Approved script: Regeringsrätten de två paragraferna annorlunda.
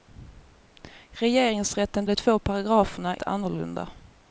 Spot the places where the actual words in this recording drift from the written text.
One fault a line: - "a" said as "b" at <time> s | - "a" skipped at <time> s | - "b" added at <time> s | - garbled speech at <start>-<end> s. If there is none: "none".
none